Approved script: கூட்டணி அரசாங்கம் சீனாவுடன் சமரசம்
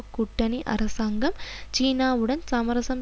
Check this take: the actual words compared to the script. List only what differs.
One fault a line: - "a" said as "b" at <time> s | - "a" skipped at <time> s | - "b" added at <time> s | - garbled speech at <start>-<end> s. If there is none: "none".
none